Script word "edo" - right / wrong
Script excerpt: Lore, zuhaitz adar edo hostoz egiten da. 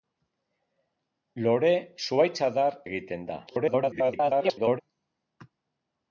wrong